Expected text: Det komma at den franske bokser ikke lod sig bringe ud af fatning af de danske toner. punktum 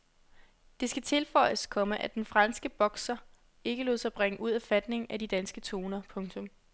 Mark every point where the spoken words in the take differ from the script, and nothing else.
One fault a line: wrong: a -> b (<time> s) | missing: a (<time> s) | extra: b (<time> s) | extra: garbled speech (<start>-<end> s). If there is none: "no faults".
extra: skal tilføjes (0.9 s)